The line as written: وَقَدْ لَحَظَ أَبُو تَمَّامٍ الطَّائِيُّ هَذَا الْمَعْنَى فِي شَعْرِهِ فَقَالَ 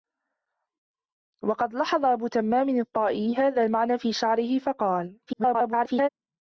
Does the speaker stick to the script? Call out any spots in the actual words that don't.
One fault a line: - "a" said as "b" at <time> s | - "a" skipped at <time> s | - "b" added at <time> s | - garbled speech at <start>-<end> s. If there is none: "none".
- garbled speech at 5.3-6.1 s